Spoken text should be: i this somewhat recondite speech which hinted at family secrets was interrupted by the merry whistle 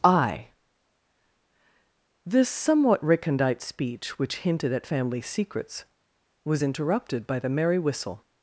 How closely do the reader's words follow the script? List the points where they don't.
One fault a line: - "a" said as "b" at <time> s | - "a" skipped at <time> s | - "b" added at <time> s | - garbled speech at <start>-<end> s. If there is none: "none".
none